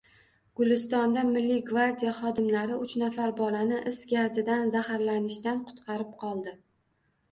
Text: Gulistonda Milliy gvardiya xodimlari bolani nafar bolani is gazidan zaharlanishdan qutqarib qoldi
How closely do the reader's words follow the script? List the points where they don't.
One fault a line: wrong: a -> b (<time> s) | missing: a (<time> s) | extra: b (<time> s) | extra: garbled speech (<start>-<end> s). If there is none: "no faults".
wrong: bolani -> uch (2.8 s)